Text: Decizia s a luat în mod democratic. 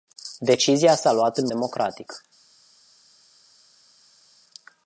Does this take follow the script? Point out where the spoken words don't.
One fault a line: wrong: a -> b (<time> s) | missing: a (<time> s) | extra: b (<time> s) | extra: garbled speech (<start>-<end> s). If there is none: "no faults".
missing: mod (1.5 s)